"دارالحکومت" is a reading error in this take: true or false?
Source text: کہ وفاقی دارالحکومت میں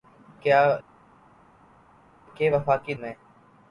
true